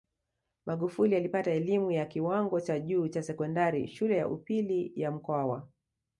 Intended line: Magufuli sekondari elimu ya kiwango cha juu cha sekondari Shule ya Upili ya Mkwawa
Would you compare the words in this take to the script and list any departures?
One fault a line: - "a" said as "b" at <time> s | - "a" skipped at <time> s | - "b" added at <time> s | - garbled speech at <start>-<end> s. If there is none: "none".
- "sekondari" said as "alipata" at 1.1 s